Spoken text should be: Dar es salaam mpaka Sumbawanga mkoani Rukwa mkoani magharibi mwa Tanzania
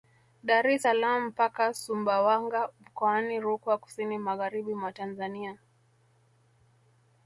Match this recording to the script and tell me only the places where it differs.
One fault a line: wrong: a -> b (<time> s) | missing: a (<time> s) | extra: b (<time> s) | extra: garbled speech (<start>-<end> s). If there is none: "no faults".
wrong: mkoani -> kusini (3.8 s)